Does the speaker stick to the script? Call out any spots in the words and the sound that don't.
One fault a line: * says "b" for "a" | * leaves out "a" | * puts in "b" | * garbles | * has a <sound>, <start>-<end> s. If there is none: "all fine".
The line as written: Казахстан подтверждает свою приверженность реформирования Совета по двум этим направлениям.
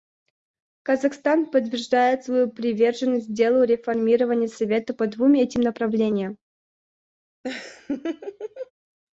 * puts in "делу"
* has a laugh, 7.4-8.7 s